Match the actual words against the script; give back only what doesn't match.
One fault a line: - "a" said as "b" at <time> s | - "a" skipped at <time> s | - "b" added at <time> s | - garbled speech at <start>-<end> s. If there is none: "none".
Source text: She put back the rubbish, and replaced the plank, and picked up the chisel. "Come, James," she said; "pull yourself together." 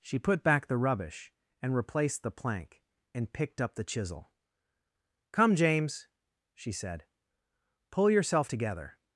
none